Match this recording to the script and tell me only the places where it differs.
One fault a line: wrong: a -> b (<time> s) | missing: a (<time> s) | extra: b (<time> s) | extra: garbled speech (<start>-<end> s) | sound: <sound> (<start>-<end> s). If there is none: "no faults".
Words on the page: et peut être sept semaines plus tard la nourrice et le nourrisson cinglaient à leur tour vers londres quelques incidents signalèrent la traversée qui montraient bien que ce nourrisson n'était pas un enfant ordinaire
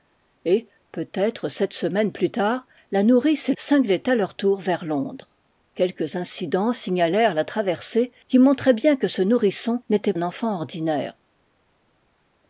missing: le nourrisson (3.5 s)
missing: pas (10.1 s)